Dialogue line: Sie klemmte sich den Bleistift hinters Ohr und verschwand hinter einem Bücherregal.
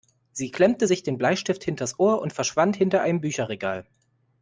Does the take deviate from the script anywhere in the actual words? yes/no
no